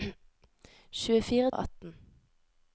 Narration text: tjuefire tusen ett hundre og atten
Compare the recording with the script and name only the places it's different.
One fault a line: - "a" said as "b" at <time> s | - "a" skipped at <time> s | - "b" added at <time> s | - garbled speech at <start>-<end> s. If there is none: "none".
- "tusen ett hundre" skipped at 1.5 s